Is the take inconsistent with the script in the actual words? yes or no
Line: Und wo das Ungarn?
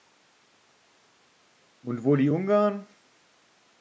yes